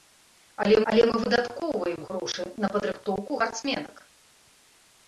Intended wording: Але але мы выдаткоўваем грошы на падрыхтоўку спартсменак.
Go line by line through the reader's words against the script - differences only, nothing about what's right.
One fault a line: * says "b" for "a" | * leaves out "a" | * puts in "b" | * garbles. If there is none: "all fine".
all fine